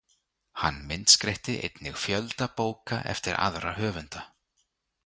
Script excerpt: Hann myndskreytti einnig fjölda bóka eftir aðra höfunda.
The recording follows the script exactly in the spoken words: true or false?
true